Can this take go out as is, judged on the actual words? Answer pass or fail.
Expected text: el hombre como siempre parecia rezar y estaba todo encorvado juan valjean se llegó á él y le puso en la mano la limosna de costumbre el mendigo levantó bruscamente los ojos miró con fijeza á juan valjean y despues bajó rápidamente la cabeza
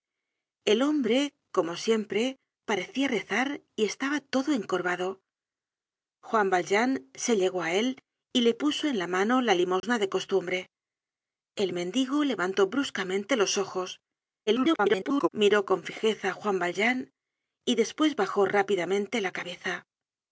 fail